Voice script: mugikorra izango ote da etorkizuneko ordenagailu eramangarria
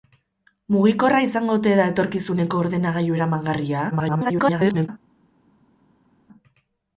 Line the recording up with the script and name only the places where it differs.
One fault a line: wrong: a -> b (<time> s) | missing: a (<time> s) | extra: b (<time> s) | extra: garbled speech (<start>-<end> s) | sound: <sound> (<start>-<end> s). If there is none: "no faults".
extra: garbled speech (3.9-4.9 s)